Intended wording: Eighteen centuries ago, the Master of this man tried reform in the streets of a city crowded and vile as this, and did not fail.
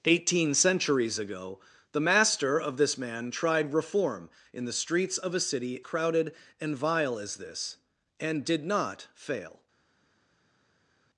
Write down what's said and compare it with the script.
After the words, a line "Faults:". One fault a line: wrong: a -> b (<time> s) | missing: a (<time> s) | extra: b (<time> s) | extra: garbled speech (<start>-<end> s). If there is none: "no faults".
Eighteen centuries ago, the Master of this man tried reform in the streets of a city crowded and vile as this, and did not fail.
Faults:
no faults